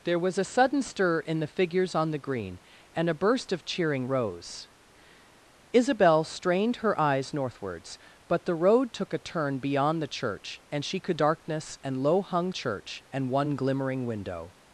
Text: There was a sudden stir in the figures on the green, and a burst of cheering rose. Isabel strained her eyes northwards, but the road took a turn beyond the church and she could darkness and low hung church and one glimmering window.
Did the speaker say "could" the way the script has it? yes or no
yes